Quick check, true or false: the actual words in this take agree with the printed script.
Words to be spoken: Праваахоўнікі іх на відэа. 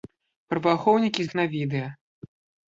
true